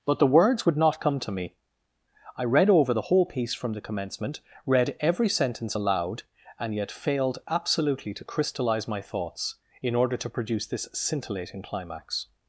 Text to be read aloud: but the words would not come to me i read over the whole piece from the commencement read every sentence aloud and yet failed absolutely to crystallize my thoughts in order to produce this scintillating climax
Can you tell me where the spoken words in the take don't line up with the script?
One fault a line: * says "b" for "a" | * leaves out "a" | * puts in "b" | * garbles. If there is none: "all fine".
all fine